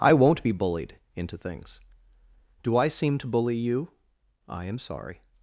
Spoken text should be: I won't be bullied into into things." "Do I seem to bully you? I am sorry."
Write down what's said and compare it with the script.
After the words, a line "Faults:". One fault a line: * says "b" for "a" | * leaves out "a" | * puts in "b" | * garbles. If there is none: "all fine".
I won't be bullied into things." "Do I seem to bully you? I am sorry."
Faults:
* leaves out "into"